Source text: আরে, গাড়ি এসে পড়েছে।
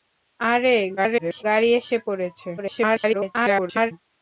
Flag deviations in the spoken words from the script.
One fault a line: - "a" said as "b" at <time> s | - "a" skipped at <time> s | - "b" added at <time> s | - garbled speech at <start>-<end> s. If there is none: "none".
- garbled speech at 1.0-1.4 s
- garbled speech at 2.6-3.9 s